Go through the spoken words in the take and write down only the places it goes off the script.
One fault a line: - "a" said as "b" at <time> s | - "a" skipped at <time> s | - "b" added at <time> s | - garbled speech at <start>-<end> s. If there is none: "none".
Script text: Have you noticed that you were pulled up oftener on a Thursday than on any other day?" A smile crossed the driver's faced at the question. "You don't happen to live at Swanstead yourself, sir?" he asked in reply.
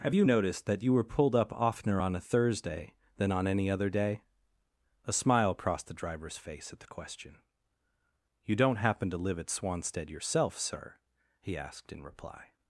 - "faced" said as "face" at 6.4 s